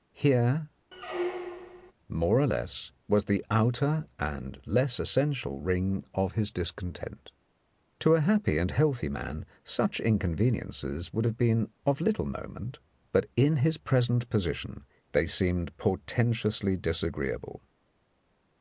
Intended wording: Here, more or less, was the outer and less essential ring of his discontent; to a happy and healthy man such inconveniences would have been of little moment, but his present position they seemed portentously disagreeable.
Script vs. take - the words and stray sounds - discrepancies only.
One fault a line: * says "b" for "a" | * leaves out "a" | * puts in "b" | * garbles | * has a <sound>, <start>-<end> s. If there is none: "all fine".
* has a squeak, 0.9-1.9 s
* puts in "in"